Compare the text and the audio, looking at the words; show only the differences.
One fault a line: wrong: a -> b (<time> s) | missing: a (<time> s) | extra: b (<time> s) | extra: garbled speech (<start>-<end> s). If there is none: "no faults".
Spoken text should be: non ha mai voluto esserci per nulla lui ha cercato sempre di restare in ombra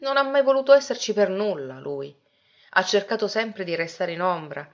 no faults